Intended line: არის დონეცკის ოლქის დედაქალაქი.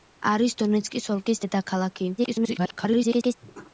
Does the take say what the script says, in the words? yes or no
no